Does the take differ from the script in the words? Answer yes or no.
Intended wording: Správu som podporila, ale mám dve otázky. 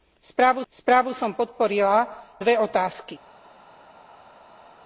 yes